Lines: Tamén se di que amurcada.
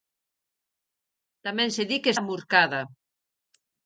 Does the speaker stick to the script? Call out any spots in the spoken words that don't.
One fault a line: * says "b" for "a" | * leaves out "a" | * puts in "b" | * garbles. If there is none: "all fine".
all fine